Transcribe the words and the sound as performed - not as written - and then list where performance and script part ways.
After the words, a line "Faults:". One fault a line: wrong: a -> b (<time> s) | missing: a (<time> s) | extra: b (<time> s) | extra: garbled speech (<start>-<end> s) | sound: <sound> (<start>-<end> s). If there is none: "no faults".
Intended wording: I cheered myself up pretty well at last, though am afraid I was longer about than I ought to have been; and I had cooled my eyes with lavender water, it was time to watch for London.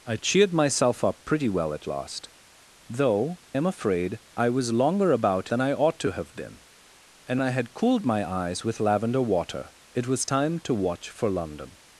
I cheered myself up pretty well at last, though am afraid I was longer about than I ought to have been; and I had cooled my eyes with lavender water, it was time to watch for London.
Faults:
no faults